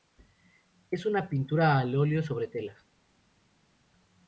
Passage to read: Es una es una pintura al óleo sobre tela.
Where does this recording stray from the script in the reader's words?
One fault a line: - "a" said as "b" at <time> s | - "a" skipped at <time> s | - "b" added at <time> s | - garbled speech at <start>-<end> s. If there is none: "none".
- "es una" skipped at 1.3 s